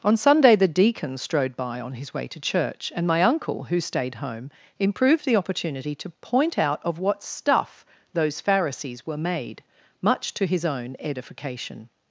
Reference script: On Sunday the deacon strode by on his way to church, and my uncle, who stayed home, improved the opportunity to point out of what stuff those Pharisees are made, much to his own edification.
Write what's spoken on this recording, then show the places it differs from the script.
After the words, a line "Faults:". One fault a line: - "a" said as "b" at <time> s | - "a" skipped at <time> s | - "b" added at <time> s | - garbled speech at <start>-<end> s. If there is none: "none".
On Sunday the deacon strode by on his way to church, and my uncle, who stayed home, improved the opportunity to point out of what stuff those Pharisees were made, much to his own edification.
Faults:
- "are" said as "were" at 9.1 s